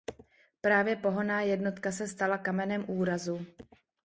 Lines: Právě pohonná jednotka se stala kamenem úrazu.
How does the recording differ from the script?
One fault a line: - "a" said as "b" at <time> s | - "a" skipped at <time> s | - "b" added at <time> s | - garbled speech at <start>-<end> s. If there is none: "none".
none